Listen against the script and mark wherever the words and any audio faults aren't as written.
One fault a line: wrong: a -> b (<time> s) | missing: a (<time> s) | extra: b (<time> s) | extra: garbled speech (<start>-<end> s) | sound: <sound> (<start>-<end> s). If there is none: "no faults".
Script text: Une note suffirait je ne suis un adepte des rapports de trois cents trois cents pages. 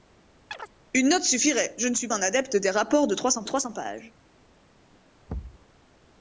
sound: chirp (0.5-0.7 s)
sound: thud (5.3-5.7 s)